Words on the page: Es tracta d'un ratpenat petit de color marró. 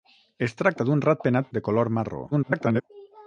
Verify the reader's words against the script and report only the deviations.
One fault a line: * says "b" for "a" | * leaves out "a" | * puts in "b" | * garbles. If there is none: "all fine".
* leaves out "petit"
* garbles